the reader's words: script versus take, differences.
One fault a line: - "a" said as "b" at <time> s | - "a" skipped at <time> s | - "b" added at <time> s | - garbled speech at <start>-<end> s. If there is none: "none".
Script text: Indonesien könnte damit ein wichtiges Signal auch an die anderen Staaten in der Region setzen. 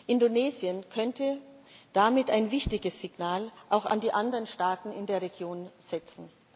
none